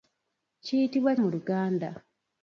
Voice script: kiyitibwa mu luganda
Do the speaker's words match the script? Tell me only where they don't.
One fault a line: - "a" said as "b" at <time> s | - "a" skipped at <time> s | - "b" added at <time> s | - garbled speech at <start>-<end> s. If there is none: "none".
none